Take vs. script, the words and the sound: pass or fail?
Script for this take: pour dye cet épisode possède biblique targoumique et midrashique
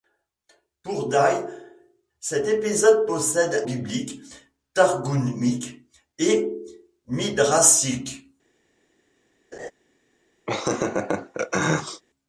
fail